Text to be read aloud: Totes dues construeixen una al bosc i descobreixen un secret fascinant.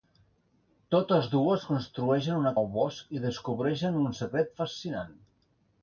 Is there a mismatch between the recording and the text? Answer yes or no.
no